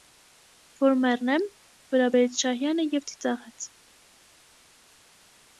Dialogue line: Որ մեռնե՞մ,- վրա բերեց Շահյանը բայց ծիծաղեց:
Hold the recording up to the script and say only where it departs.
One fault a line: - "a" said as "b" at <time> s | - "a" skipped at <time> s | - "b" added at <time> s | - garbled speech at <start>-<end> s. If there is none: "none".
- "բայց" said as "և" at 2.9 s